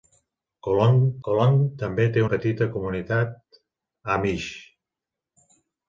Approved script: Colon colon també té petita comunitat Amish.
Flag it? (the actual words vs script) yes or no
no